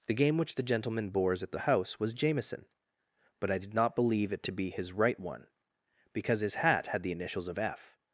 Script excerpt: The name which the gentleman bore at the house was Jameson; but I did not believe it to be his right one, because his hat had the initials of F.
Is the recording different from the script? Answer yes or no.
yes